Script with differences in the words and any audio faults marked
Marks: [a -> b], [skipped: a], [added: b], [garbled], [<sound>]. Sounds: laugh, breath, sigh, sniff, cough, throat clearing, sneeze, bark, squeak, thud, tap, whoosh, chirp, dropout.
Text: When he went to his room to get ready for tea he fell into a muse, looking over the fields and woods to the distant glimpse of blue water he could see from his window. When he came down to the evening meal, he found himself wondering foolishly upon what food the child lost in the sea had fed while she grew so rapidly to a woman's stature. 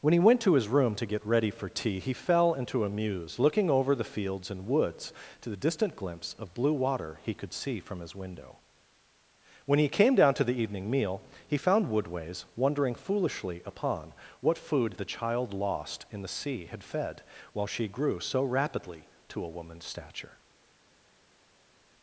When he went to his room to get ready for tea he fell into a muse, looking over the fields and woods to the distant glimpse of blue water he could see from his window. When he came down to the evening meal, he found [himself -> woodways] wondering foolishly upon what food the child lost in the sea had fed while she grew so rapidly to a woman's stature.